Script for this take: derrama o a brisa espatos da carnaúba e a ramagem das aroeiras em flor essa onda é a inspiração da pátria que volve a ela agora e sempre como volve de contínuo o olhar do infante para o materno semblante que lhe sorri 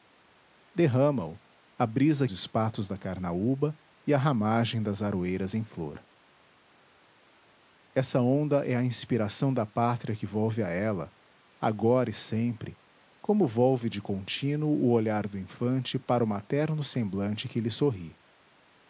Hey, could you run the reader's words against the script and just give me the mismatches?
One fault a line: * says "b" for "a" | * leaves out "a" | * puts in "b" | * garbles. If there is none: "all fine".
all fine